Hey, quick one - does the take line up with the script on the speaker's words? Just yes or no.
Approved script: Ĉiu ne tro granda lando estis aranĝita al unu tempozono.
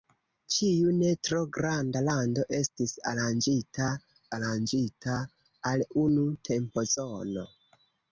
no